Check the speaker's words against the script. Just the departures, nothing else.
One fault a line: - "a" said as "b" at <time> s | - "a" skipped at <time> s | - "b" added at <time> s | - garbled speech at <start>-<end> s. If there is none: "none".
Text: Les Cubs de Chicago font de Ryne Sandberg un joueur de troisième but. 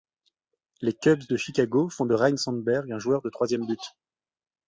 none